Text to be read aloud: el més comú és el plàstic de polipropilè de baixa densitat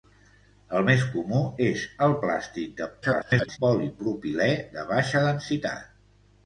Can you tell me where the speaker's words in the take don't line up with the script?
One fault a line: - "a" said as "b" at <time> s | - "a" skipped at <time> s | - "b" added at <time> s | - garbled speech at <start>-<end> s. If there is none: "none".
- garbled speech at 3.0-3.6 s